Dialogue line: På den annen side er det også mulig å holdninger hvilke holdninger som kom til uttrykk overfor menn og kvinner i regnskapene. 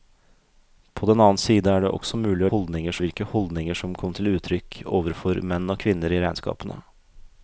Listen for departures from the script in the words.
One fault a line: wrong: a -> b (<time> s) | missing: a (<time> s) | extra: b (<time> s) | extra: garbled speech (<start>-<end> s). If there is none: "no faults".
no faults